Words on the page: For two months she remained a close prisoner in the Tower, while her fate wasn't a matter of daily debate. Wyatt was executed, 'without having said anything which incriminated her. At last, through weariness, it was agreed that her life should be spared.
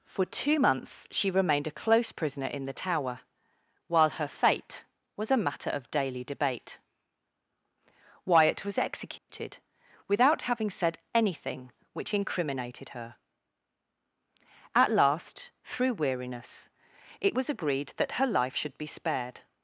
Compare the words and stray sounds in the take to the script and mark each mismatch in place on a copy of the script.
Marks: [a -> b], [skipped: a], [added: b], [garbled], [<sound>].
For two months she remained a close prisoner in the Tower, while her fate [wasn't -> was] a matter of daily debate. Wyatt was executed, [dropout] 'without having said anything which incriminated her. At last, through weariness, it was agreed that her life should be spared.